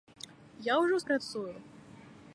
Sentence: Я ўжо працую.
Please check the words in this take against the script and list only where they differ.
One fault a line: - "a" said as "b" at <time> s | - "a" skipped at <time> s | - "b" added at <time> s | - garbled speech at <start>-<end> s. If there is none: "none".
none